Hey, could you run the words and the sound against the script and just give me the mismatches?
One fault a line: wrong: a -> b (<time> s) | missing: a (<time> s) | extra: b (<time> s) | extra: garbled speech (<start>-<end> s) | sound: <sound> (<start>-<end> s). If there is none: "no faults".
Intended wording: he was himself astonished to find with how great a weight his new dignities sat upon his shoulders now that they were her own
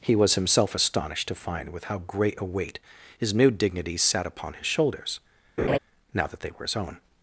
sound: laugh (5.6-5.8 s)
wrong: her -> his (6.6 s)